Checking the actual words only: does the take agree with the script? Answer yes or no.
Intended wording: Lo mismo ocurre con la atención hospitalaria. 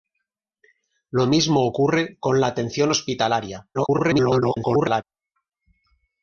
no